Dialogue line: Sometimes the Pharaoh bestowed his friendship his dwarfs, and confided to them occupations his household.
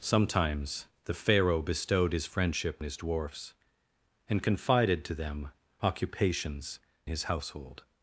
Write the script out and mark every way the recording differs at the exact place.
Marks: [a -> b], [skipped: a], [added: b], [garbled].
Sometimes the Pharaoh bestowed his friendship his dwarfs, and confided to them occupations his household.